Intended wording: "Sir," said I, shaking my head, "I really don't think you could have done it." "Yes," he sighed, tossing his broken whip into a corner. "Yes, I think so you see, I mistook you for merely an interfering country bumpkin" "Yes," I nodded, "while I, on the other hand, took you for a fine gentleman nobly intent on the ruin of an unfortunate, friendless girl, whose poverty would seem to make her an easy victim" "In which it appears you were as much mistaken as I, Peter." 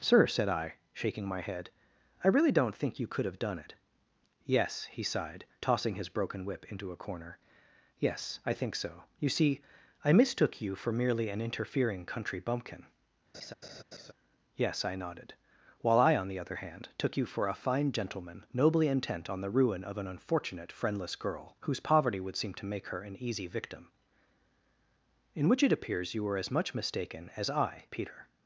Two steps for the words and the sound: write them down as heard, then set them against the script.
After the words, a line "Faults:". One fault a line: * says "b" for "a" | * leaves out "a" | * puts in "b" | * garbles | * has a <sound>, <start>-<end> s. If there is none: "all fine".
"Sir," said I, shaking my head, "I really don't think you could have done it." "Yes," he sighed, tossing his broken whip into a corner. "Yes, I think so you see, I mistook you for merely an interfering country bumpkin" "Yes," I nodded, "while I, on the other hand, took you for a fine gentleman nobly intent on the ruin of an unfortunate, friendless girl, whose poverty would seem to make her an easy victim" "In which it appears you were as much mistaken as I, Peter."
Faults:
* has a laugh, 13.3-14.1 s